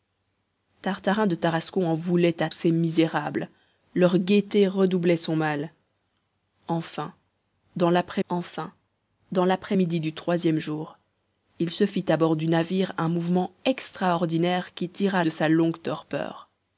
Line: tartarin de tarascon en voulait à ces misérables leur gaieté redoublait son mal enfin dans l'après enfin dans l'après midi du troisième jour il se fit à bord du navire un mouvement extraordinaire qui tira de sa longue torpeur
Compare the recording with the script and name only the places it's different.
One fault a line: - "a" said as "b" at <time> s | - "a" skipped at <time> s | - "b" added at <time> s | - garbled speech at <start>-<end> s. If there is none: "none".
none